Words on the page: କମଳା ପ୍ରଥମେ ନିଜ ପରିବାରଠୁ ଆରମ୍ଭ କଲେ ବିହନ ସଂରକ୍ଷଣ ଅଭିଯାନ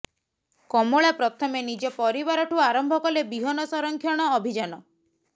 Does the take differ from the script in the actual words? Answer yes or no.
no